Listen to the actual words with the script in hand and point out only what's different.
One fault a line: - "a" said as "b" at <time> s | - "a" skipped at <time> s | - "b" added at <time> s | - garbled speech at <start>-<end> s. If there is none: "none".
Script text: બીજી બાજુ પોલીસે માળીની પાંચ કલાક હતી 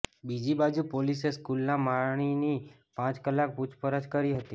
- "સ્કૂલના" added at 1.4 s
- "પૂછપરછ કરી" added at 3.5 s